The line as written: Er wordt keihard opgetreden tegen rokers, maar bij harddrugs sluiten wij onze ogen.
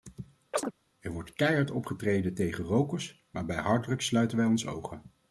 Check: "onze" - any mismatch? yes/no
no